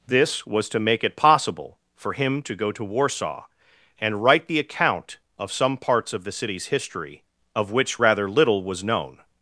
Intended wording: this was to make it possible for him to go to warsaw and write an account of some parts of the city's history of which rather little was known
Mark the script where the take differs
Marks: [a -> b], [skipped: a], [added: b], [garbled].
this was to make it possible for him to go to warsaw and write [an -> the] account of some parts of the city's history of which rather little was known